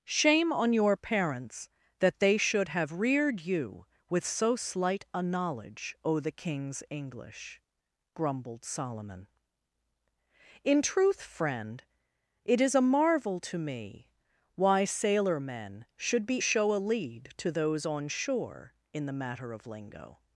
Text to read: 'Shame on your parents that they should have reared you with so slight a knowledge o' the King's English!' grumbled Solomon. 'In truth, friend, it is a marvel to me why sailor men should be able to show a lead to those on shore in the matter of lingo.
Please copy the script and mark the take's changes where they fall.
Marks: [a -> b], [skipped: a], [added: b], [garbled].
'Shame on your parents that they should have reared you with so slight a knowledge o' the King's English!' grumbled Solomon. 'In truth, friend, it is a marvel to me why sailor men should be [skipped: able to] show a lead to those on shore in the matter of lingo.